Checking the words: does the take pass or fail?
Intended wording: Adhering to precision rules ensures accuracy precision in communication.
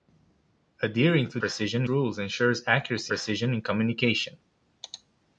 pass